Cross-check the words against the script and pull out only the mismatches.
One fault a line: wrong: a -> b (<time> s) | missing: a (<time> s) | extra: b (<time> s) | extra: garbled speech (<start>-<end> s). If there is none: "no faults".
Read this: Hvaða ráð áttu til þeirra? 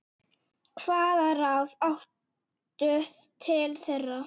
no faults